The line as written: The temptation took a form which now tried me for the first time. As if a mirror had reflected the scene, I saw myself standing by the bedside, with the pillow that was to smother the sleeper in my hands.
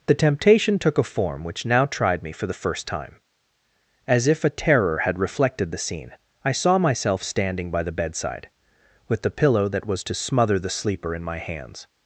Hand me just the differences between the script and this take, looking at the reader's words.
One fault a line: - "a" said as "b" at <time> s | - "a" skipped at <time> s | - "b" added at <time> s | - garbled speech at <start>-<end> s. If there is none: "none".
- "mirror" said as "terror" at 4.5 s